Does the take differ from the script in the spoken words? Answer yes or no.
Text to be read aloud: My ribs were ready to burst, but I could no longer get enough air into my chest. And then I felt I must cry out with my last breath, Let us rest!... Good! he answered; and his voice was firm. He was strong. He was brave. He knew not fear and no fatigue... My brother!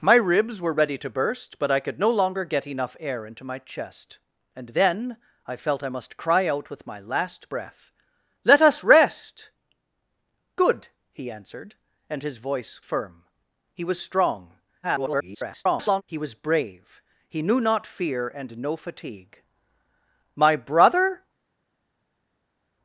yes